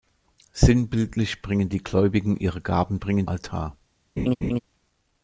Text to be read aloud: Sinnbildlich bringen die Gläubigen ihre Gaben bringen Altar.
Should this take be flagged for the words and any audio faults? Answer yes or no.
yes